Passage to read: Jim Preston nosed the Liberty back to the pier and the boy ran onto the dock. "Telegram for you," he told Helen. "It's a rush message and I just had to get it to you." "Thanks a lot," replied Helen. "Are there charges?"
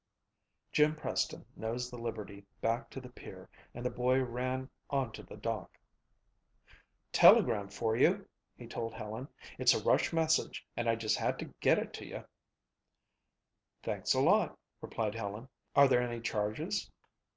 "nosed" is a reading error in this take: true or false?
false